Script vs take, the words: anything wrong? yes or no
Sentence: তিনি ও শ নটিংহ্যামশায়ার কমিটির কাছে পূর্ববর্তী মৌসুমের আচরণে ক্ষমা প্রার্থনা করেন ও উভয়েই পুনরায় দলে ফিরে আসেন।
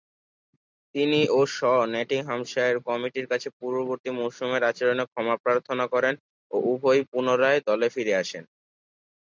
no